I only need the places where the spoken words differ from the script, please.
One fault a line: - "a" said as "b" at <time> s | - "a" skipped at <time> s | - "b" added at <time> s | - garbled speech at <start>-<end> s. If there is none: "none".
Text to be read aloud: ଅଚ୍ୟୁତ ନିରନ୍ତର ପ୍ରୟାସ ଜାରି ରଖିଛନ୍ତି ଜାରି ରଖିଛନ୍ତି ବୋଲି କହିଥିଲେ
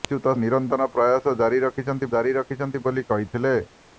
none